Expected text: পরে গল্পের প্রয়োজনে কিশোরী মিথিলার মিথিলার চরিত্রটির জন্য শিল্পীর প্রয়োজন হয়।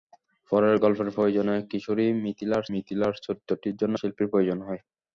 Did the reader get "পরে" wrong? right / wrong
right